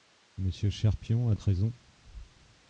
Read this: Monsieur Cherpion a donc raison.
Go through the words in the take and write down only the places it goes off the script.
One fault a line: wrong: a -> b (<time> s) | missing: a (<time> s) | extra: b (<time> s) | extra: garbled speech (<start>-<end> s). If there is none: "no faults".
missing: donc (1.4 s)